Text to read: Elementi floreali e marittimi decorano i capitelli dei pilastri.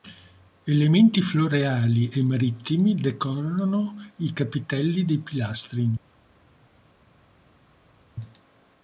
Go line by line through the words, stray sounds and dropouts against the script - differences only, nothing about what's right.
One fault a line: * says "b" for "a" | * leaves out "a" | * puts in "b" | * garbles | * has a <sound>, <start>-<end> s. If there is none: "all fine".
all fine